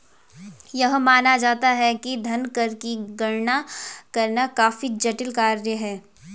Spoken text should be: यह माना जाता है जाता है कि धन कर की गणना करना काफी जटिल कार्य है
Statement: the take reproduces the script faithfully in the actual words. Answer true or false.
false